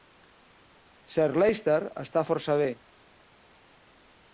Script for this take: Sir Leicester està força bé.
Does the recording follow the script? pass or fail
pass